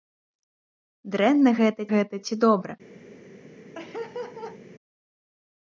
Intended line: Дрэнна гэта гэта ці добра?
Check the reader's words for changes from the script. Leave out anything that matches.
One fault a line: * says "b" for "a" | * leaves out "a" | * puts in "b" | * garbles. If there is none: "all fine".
all fine